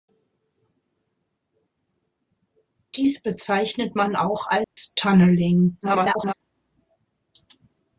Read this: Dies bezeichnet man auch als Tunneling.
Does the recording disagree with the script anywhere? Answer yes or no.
yes